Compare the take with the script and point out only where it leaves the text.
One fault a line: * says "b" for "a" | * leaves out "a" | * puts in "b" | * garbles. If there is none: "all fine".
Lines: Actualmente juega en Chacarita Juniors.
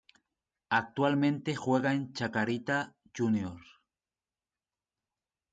all fine